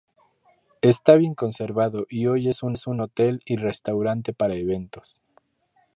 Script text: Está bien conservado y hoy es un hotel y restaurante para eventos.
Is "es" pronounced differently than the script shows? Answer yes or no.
no